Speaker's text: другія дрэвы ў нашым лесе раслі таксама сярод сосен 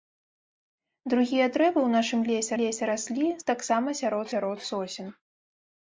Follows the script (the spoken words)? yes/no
no